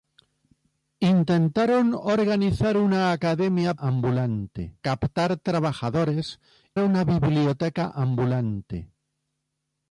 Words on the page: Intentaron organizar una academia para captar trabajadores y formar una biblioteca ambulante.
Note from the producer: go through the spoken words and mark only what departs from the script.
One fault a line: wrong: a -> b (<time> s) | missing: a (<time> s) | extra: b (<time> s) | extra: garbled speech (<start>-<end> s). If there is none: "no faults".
wrong: para -> ambulante (3.8 s)
missing: y formar (6.4 s)